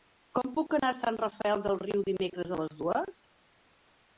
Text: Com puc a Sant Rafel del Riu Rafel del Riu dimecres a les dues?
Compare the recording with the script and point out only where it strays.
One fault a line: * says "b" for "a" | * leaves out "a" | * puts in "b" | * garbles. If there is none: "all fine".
* puts in "anar"
* leaves out "Rafel del Riu"